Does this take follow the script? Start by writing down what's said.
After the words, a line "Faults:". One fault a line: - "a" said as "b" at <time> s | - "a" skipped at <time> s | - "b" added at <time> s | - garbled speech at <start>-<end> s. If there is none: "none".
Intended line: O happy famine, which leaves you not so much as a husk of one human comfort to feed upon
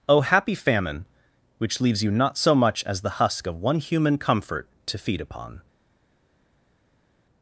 O happy famine, which leaves you not so much as the husk of one human comfort to feed upon
Faults:
- "a" said as "the" at 3.0 s